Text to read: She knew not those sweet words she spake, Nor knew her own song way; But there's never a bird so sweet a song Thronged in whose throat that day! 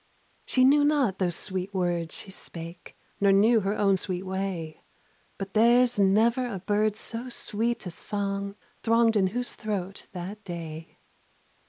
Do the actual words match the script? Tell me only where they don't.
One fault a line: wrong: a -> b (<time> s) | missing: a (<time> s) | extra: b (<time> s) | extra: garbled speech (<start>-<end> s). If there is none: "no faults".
wrong: song -> sweet (4.0 s)